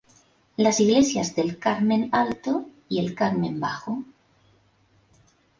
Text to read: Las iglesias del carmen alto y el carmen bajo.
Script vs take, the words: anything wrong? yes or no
no